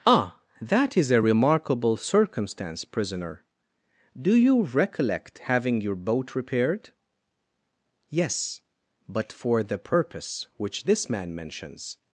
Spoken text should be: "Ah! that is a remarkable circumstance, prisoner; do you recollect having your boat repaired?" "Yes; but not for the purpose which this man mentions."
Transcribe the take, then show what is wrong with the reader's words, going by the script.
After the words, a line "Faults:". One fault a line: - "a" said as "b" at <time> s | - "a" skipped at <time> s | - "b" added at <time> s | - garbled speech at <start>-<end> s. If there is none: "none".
"Ah! that is a remarkable circumstance, prisoner; do you recollect having your boat repaired?" "Yes; but for the purpose which this man mentions."
Faults:
- "not" skipped at 9.3 s